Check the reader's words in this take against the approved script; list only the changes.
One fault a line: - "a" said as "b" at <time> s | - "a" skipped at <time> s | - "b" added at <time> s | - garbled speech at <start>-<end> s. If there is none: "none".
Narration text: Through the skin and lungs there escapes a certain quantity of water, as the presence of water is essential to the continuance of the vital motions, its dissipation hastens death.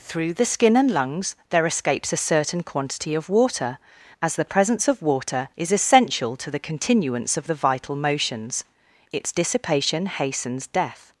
none